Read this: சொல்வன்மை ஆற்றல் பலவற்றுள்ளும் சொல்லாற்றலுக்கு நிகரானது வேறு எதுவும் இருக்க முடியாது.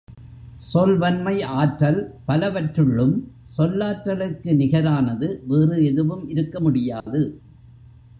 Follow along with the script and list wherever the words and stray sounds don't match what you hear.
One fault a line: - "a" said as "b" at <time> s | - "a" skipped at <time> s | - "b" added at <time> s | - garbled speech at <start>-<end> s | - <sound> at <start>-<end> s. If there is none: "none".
- dropout at 7.0-7.1 s